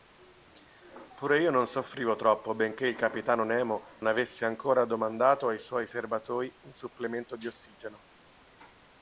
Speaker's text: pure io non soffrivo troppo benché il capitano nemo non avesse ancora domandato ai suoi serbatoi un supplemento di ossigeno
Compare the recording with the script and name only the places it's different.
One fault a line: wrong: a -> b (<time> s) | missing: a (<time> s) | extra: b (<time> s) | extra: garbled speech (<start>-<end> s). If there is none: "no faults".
missing: non (3.9 s)